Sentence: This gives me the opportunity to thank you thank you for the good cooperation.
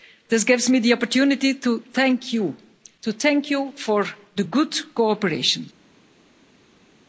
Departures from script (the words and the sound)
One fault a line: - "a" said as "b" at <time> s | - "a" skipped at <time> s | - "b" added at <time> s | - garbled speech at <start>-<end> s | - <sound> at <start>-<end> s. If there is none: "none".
- "to" added at 3.0 s